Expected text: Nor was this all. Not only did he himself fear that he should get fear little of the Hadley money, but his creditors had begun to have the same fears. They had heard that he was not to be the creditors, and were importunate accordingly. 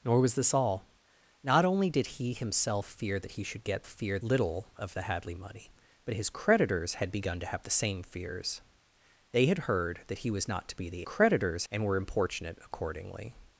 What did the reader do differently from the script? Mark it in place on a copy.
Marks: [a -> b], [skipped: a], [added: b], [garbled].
Nor was this all. Not only did he himself fear that he should get fear little of the Hadley money, but his creditors had begun to have the same fears. They had heard that he was not to be the creditors, and were importunate accordingly.